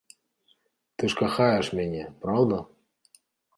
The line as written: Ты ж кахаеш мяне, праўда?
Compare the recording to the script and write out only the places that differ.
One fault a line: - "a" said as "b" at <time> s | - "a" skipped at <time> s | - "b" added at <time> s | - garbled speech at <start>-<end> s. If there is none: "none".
none